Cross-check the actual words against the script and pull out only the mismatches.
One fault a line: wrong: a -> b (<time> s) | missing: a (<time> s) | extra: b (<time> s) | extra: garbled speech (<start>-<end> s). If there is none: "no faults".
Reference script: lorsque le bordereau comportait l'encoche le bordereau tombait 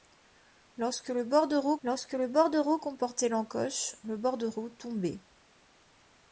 extra: lorsque le bordereau (1.8 s)